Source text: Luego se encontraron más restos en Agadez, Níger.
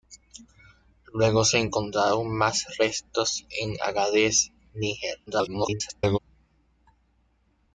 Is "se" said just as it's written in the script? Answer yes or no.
yes